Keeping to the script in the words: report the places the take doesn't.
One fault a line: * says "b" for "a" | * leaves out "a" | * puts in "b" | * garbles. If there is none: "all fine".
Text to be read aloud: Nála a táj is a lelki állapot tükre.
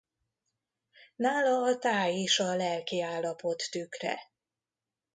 all fine